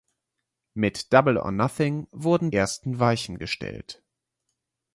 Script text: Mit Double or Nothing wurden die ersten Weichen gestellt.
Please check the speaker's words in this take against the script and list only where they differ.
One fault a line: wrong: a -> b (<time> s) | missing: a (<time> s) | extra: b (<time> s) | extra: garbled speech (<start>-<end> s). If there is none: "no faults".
missing: die (2.5 s)